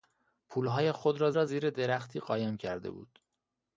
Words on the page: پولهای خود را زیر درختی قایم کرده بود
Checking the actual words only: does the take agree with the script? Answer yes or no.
no